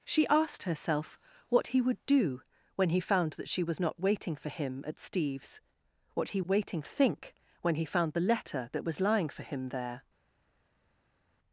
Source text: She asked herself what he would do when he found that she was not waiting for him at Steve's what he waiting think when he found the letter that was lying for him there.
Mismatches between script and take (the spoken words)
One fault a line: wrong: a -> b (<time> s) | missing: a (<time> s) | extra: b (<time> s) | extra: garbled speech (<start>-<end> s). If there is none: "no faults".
no faults